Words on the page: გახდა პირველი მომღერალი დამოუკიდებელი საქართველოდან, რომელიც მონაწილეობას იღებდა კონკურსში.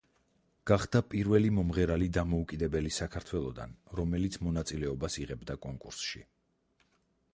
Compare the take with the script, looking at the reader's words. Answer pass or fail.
pass